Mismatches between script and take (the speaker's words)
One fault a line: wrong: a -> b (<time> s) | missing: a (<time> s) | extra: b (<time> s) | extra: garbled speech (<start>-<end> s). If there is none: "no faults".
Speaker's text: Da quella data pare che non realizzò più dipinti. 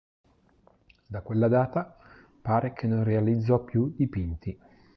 no faults